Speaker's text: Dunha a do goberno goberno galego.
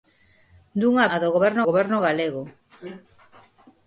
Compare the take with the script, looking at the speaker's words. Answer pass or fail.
pass